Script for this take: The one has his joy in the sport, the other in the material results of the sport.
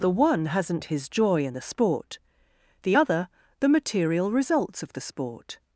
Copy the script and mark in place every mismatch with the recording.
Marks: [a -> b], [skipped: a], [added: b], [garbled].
The one [has -> hasn't] his joy in the sport, the other [skipped: in] the material results of the sport.